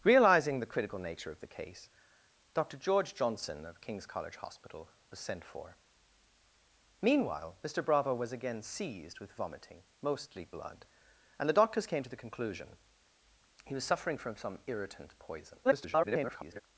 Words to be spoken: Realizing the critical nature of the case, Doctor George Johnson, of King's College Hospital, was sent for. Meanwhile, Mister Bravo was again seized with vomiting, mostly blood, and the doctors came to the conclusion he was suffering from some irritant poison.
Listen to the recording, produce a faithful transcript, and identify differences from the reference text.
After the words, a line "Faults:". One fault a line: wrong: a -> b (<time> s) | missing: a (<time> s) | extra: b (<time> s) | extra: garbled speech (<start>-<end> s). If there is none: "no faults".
Realizing the critical nature of the case, Doctor George Johnson, of King's College Hospital, was sent for. Meanwhile, Mister Bravo was again seized with vomiting, mostly blood, and the doctors came to the conclusion he was suffering from some irritant poison. [garbled]
Faults:
extra: garbled speech (15.6-16.6 s)